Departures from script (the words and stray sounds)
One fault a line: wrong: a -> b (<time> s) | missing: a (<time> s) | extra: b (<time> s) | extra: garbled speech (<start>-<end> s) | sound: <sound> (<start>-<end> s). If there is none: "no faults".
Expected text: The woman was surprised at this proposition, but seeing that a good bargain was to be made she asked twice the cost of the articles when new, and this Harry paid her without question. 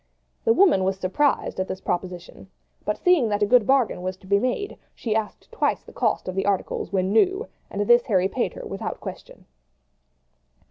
no faults